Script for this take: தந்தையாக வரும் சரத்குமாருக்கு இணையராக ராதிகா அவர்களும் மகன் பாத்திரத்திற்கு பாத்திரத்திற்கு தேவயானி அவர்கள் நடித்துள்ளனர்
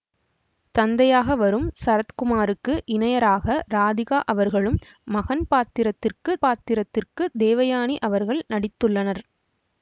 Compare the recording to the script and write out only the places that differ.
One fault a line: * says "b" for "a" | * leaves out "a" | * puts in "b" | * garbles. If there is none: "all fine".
all fine